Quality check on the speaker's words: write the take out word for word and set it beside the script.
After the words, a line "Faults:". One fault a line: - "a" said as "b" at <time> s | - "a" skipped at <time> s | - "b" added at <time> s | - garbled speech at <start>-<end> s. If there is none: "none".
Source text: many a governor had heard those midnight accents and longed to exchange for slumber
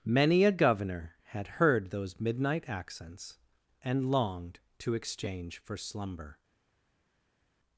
many a governor had heard those midnight accents and longed to exchange for slumber
Faults:
none